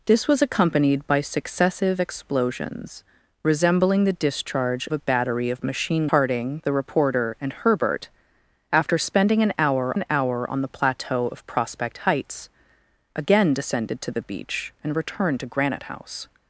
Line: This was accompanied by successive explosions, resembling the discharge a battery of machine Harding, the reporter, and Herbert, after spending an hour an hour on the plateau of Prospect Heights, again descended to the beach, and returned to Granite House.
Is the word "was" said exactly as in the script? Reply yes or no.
yes